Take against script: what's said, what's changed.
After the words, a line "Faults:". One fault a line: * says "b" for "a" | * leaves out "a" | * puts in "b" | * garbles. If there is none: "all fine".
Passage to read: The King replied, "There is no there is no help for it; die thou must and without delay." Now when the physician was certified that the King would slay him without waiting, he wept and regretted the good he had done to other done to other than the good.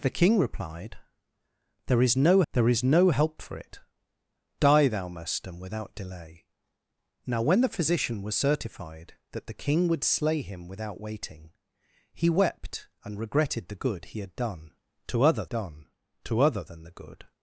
The King replied, "There is no there is no help for it; die thou must and without delay." Now when the physician was certified that the King would slay him without waiting, he wept and regretted the good he had done to other done to other than the good.
Faults:
all fine